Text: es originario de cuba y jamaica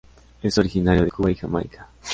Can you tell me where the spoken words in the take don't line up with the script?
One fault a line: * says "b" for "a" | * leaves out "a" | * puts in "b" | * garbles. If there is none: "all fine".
all fine